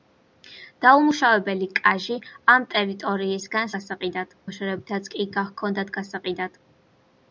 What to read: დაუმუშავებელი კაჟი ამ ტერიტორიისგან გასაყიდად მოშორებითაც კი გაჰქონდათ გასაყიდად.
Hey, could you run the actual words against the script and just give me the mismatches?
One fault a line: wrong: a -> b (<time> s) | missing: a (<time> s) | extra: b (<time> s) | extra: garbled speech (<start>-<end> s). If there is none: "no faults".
no faults